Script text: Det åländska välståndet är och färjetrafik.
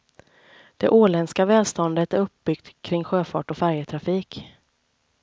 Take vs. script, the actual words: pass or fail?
fail